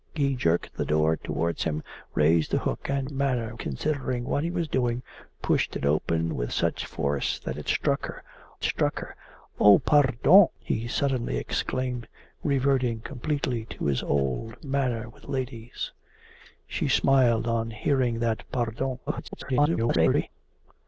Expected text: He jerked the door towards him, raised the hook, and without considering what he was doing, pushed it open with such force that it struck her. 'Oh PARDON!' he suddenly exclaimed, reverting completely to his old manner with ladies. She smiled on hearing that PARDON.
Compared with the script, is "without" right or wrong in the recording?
wrong